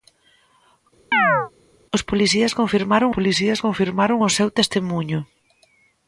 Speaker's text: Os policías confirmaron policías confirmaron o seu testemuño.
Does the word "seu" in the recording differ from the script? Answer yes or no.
no